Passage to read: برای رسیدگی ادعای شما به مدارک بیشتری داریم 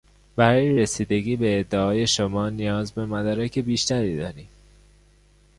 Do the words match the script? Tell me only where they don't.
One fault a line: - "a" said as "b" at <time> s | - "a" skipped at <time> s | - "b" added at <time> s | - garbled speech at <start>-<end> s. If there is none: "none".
- "به" added at 1.4 s
- "نیاز" added at 2.5 s